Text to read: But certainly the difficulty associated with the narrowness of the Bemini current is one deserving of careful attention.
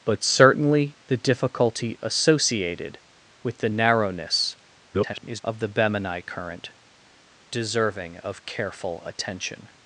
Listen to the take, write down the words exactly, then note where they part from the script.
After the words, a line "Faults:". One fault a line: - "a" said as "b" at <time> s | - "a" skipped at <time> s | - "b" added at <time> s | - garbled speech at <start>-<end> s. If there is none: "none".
But certainly the difficulty associated with the narrowness [garbled] of the Bemini current deserving of careful attention.
Faults:
- garbled speech at 4.9-5.4 s
- "is one" skipped at 6.7 s